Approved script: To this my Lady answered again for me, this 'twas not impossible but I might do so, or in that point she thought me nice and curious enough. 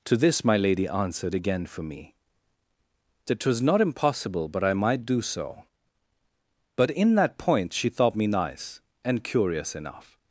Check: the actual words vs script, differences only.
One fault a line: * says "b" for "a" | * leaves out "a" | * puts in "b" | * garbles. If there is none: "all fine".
* says "that" for "this"
* says "but" for "or"